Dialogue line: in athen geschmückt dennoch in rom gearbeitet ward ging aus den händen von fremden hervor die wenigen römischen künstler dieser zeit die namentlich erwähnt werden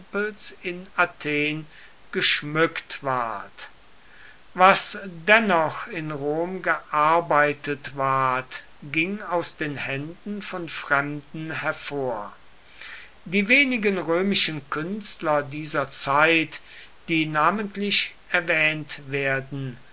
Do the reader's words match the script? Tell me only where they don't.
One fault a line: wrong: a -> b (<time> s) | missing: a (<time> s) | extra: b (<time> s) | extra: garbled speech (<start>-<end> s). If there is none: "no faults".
extra: ward was (3.0 s)